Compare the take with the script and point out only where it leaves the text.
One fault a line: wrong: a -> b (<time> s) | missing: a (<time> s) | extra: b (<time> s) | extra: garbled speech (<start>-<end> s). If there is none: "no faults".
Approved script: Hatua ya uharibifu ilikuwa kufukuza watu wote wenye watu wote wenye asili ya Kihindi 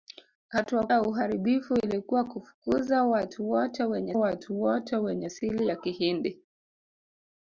no faults